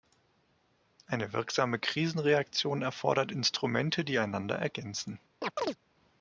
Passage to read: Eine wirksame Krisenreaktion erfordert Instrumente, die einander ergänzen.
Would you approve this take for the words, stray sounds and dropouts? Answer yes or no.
no